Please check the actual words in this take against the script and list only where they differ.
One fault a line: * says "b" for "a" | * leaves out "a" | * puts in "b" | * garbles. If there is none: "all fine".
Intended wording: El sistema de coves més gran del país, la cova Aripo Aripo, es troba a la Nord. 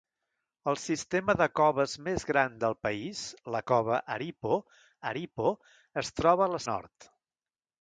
all fine